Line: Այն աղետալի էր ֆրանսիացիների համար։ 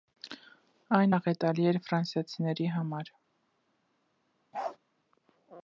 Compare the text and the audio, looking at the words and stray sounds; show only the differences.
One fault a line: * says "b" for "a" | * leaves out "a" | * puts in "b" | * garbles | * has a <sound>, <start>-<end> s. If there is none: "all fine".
* has a bark, 4.5-4.8 s